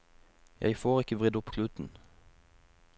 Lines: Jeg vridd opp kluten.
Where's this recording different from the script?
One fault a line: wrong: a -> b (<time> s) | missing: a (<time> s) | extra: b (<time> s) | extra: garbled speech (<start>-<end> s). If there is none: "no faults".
extra: får ikke (0.8 s)